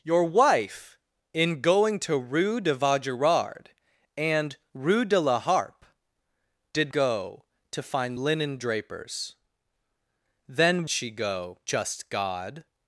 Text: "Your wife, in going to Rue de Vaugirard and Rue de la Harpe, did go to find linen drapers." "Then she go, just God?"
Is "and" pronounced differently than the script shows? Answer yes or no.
no